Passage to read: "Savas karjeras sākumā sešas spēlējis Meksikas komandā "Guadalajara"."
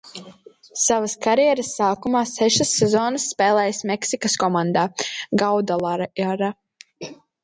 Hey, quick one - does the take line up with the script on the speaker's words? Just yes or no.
no